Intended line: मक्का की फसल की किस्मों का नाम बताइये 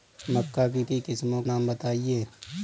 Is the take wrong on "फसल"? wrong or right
wrong